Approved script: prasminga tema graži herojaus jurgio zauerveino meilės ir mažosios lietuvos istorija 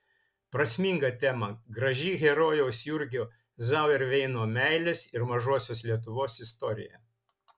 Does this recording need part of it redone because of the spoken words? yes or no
no